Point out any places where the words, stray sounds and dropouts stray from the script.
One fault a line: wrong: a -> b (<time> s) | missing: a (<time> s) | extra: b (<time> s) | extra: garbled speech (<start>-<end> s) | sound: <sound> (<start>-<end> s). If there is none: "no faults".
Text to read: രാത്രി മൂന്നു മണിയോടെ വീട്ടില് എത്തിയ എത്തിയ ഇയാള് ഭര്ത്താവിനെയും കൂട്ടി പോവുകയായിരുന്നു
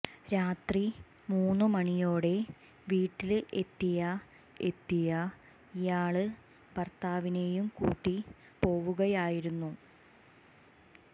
no faults